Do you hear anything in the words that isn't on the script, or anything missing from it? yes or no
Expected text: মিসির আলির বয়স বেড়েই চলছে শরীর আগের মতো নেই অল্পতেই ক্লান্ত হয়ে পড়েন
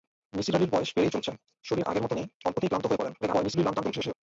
yes